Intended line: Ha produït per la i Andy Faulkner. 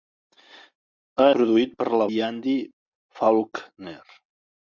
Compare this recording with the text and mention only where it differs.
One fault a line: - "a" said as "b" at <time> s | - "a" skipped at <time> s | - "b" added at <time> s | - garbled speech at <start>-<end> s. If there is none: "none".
none